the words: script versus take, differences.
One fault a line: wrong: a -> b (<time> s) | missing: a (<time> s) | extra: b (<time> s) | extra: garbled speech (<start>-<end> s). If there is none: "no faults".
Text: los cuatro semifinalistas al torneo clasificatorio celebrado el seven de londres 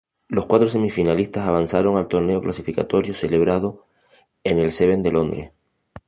extra: avanzaron (1.5 s)
extra: en (4.4 s)